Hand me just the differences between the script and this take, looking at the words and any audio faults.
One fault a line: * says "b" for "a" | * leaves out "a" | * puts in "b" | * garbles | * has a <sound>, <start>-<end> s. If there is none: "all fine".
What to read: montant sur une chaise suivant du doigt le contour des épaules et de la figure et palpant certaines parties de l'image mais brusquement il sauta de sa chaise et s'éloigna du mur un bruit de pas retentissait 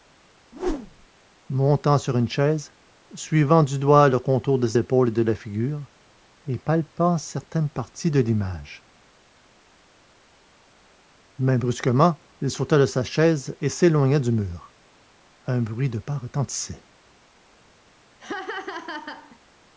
* has a whoosh, 0.5-1.1 s
* has a laugh, 18.2-19.4 s